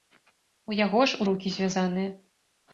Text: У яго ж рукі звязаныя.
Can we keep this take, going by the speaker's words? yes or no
yes